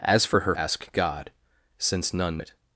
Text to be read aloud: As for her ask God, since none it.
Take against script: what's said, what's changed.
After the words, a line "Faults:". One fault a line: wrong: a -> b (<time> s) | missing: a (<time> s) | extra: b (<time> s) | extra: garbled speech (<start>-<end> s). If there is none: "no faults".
As for her ask God, since none it.
Faults:
no faults